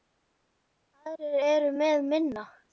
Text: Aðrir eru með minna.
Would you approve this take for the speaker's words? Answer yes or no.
yes